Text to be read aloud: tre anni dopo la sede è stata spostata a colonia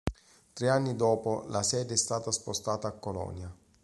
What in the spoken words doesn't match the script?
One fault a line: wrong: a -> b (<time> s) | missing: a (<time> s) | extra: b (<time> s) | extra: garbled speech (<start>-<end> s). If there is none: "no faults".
no faults